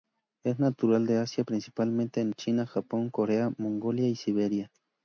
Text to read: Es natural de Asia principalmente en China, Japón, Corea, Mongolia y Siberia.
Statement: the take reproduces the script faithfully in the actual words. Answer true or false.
true